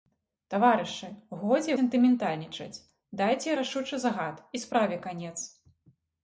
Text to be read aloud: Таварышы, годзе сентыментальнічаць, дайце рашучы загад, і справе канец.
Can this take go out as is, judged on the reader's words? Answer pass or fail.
pass